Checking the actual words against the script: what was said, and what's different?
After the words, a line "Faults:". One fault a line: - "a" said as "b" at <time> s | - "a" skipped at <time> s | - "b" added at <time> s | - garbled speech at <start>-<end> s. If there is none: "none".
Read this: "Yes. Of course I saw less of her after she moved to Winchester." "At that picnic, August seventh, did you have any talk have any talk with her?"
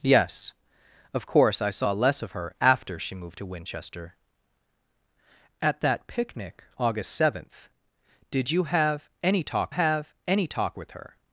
"Yes. Of course I saw less of her after she moved to Winchester." "At that picnic, August seventh, did you have any talk have any talk with her?"
Faults:
none